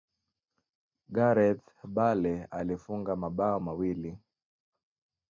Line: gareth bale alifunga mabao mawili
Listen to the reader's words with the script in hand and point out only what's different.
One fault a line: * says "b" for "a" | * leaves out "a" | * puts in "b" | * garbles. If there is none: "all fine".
all fine